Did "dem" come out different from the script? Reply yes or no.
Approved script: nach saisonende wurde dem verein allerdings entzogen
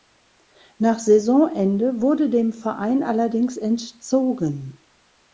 no